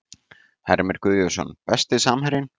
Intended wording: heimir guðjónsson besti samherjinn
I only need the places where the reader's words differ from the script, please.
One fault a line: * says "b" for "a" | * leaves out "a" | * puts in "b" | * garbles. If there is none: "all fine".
all fine